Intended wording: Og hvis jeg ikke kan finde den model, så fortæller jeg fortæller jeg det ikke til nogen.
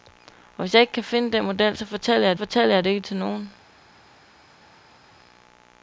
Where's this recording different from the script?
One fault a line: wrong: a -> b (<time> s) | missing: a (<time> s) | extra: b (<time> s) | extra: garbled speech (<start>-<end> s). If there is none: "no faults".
no faults